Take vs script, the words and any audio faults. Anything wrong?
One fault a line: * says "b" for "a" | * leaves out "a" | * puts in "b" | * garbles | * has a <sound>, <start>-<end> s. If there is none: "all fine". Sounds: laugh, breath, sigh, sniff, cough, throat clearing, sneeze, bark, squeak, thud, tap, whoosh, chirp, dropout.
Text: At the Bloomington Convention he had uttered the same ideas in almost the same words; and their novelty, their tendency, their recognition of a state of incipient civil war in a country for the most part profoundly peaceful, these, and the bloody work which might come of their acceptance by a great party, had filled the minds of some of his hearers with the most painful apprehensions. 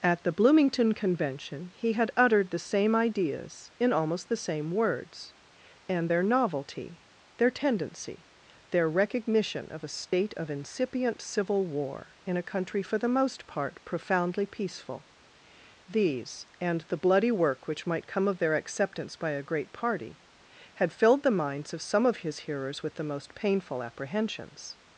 * has a dropout, 10.1-10.1 s